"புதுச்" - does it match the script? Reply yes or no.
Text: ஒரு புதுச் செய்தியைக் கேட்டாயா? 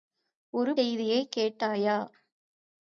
no